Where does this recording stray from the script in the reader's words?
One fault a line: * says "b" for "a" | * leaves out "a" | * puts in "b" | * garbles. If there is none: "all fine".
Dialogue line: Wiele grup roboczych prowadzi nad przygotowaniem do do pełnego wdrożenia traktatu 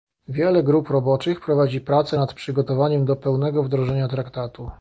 * puts in "prace"
* leaves out "do"